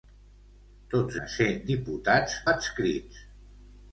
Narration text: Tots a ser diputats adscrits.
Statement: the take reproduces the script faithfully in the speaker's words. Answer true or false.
true